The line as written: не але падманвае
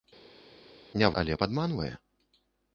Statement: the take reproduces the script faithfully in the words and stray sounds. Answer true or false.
true